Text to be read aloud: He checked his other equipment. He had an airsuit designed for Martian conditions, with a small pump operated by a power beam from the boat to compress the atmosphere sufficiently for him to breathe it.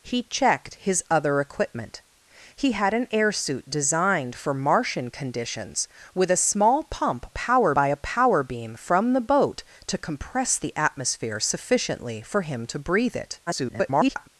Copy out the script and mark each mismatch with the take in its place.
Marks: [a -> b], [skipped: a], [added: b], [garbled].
He checked his other equipment. He had an airsuit designed for Martian conditions, with a small pump [operated -> power] by a power beam from the boat to compress the atmosphere sufficiently for him to breathe it. [garbled]